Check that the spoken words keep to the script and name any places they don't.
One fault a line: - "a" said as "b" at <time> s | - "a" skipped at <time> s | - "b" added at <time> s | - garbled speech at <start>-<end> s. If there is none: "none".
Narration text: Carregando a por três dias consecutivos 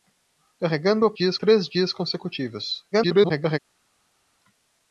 - "por" said as "dias" at 1.1 s
- garbled speech at 2.9-3.6 s